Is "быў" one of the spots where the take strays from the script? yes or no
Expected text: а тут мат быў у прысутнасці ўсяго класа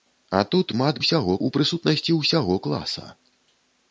yes